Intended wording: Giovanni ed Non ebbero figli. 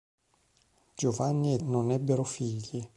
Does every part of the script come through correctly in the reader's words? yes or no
yes